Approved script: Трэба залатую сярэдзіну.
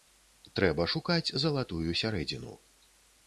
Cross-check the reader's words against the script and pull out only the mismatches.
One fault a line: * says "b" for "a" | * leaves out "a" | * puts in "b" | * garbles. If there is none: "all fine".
* puts in "шукаць"